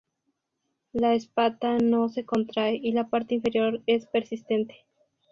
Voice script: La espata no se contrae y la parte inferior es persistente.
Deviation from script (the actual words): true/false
false